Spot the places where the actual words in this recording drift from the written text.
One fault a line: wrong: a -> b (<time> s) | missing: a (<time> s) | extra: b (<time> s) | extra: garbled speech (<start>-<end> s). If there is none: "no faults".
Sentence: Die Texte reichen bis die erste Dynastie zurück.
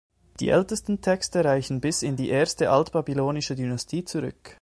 extra: ältesten (0.5 s)
extra: in (2.0 s)
extra: altbabylonische (2.7 s)